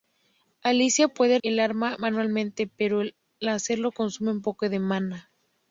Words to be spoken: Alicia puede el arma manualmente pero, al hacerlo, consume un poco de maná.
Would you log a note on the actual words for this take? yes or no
no